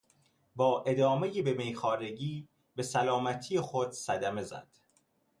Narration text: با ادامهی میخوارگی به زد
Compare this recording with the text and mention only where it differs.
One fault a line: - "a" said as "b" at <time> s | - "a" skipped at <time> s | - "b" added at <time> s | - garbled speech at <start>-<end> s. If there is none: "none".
- "به" added at 1.4 s
- "سلامتی خود صدمه" added at 2.8 s